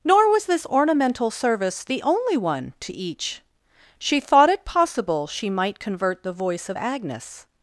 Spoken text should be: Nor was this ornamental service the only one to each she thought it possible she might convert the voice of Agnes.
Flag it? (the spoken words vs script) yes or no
no